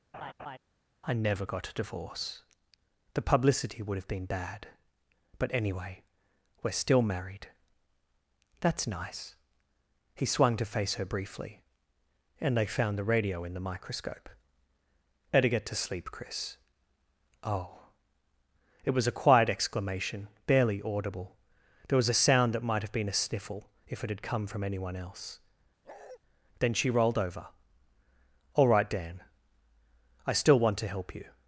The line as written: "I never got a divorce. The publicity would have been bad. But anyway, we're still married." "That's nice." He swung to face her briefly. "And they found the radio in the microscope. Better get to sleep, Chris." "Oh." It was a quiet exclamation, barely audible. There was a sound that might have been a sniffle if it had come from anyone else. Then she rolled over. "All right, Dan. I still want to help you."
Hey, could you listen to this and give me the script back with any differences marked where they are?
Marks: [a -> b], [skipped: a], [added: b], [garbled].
"I never got a divorce. The publicity would have been bad. But anyway, we're still married." "That's nice." He swung to face her briefly. "And they found the radio in the microscope. Better get to sleep, Chris." "Oh." It was a quiet exclamation, barely audible. There was a sound that might have been a sniffle if it had come from anyone else. Then she rolled over. "All right, Dan. I still want to help you."